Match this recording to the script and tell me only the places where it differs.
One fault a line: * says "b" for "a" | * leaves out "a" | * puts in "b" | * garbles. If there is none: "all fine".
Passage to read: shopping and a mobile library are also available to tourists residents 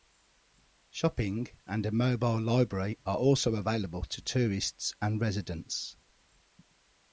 * puts in "and"